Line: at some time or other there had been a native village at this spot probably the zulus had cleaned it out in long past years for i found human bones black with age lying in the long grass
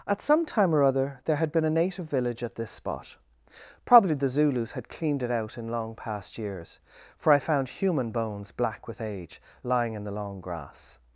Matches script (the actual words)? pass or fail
pass